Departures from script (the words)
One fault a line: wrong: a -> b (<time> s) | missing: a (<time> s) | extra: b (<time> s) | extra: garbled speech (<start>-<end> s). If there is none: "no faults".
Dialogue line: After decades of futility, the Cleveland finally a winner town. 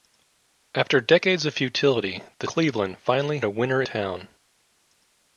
no faults